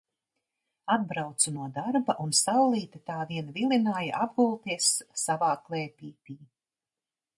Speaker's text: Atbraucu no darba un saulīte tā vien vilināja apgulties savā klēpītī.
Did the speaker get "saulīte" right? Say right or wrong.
right